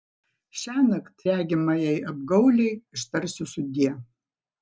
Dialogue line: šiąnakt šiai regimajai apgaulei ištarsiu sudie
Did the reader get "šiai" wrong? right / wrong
wrong